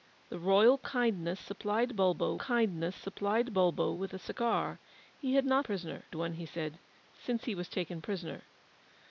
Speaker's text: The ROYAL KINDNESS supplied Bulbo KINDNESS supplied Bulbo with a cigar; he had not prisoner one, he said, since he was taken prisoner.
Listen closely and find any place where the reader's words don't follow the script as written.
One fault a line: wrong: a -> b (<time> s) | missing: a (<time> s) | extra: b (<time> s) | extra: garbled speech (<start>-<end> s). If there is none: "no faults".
no faults